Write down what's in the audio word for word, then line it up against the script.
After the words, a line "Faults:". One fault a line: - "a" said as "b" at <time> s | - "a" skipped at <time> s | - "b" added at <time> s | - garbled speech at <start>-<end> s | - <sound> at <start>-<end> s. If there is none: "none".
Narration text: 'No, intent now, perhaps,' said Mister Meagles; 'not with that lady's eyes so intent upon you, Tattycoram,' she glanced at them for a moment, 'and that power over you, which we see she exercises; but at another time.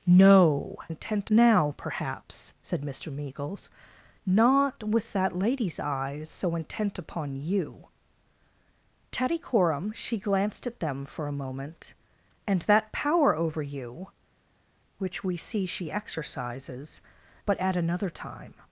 'No, intent now, perhaps,' said Mister Meagles; 'not with that lady's eyes so intent upon you, Tattycoram,' she glanced at them for a moment, 'and that power over you, which we see she exercises; but at another time.
Faults:
none